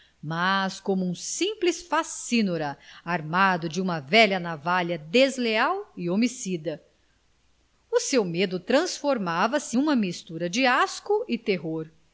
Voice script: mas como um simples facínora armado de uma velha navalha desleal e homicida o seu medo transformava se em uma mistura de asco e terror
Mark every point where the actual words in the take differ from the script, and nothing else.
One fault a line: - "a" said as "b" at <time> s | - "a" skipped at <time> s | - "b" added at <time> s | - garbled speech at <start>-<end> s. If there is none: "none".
- "em" skipped at 9.8 s